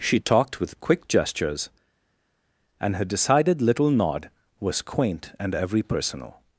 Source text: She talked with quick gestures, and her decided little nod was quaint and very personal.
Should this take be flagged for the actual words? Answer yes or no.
yes